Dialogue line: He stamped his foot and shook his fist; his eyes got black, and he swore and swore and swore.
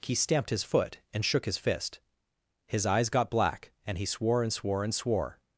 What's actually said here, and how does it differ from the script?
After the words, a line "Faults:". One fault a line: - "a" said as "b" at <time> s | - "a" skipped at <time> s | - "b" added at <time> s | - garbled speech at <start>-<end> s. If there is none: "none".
He stamped his foot and shook his fist; his eyes got black, and he swore and swore and swore.
Faults:
none